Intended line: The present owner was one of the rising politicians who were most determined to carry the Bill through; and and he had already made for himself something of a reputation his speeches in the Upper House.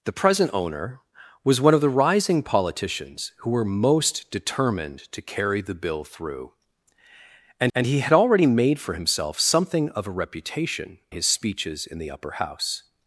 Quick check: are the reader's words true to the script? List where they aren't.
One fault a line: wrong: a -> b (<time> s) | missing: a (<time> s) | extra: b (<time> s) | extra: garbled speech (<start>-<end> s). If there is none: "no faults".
no faults